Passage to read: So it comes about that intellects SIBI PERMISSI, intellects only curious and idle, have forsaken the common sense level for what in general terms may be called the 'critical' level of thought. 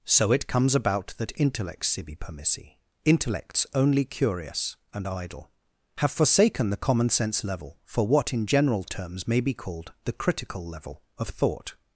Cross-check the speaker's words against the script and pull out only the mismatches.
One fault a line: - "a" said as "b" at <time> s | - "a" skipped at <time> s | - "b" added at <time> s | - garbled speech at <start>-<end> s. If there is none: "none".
none